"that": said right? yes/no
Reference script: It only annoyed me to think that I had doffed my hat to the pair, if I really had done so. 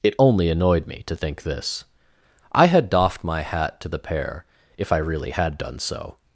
no